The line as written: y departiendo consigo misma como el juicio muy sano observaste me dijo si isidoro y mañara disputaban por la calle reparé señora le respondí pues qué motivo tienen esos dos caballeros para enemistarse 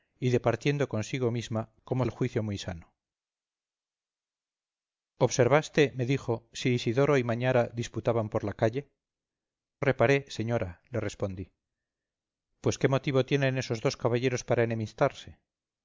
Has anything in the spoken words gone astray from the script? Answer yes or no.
no